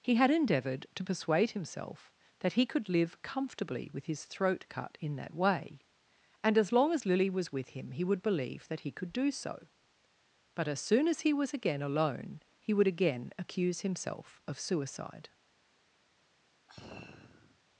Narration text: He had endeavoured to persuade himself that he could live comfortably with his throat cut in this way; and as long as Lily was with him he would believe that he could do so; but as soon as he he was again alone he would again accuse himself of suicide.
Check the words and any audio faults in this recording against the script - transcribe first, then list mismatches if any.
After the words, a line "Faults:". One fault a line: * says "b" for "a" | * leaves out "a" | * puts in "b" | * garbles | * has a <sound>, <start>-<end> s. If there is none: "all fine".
He had endeavoured to persuade himself that he could live comfortably with his throat cut in that way; and as long as Lily was with him he would believe that he could do so; but as soon as he was again alone he would again accuse himself of suicide.
Faults:
* says "that" for "this"
* leaves out "he"
* has a sigh, 16.7-17.6 s